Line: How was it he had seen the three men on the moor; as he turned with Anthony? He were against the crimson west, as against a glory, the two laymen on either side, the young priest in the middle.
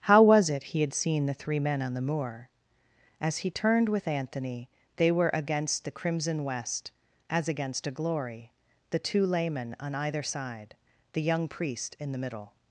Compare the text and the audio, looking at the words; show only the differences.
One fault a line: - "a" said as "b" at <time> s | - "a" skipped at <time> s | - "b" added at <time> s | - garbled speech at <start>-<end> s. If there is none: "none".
- "He" said as "They" at 5.0 s